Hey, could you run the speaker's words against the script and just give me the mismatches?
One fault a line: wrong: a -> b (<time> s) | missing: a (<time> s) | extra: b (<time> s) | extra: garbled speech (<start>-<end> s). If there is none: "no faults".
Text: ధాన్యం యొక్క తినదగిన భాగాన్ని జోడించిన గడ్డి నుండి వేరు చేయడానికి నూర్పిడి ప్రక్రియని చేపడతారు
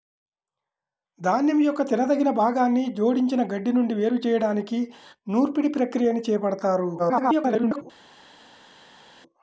extra: garbled speech (7.0-7.8 s)